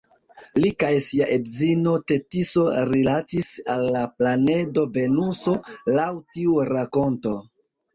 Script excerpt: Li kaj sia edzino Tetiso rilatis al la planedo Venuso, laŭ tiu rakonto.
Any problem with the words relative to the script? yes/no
no